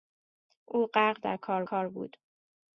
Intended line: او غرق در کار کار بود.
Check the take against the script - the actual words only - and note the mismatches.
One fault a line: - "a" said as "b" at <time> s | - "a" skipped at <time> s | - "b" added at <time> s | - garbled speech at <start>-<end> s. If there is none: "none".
none